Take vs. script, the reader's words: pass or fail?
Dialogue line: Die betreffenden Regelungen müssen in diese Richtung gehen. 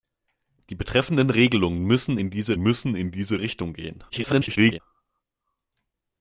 fail